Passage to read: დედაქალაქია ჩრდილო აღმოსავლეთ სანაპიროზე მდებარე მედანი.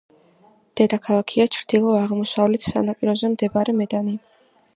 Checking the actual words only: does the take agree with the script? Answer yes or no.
yes